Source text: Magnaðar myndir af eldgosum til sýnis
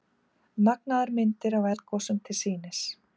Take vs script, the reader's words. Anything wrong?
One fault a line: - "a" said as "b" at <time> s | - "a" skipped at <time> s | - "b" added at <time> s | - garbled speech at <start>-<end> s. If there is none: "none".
none